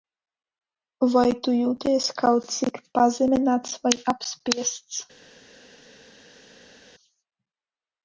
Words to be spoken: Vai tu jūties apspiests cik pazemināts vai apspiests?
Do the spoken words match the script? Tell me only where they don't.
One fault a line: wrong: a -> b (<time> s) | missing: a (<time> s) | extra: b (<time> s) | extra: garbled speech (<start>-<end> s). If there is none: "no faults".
wrong: apspiests -> kaut (2.2 s)